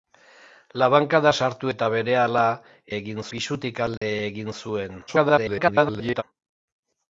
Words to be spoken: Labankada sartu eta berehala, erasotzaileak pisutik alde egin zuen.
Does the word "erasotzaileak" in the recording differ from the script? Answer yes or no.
yes